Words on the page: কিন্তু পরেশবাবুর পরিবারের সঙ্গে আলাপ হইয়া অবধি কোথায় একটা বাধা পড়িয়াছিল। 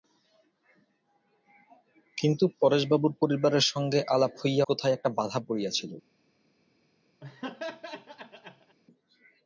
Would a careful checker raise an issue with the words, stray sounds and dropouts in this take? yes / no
yes